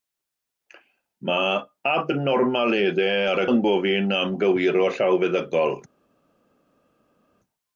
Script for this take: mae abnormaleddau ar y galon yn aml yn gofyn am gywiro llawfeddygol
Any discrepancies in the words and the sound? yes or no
yes